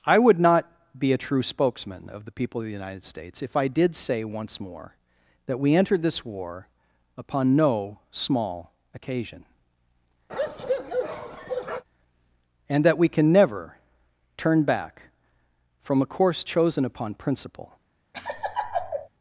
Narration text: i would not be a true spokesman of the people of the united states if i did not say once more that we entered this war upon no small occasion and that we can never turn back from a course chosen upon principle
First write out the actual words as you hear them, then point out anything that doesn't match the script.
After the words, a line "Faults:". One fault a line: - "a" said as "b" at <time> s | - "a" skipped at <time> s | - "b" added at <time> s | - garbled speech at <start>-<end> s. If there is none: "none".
i would not be a true spokesman of the people of the united states if i did say once more that we entered this war upon no small occasion and that we can never turn back from a course chosen upon principle
Faults:
- "not" skipped at 4.0 s